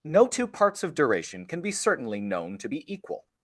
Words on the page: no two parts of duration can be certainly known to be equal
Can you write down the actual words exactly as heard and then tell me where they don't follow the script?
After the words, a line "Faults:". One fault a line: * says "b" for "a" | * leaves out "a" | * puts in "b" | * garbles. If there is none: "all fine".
no two parts of duration can be certainly known to be equal
Faults:
all fine